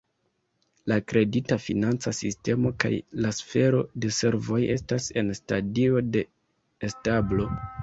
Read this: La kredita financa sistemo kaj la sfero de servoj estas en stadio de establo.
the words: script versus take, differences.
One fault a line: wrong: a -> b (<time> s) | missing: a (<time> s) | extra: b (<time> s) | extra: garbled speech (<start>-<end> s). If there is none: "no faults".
no faults